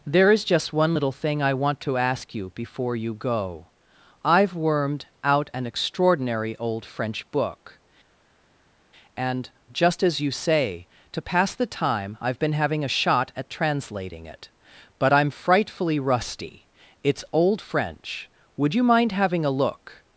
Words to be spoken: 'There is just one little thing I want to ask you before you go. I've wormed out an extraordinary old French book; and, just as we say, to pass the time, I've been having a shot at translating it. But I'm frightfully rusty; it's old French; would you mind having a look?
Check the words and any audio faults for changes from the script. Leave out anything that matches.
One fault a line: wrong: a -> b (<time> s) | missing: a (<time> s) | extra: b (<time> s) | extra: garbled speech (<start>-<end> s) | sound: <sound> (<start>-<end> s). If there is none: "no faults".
wrong: we -> you (10.2 s)